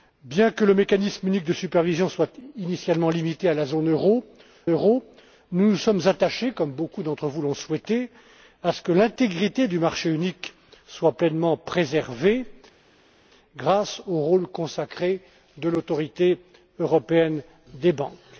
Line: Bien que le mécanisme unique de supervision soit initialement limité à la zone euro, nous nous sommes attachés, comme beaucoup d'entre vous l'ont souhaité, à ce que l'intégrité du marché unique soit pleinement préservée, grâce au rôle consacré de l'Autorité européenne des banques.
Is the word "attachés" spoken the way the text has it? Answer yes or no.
yes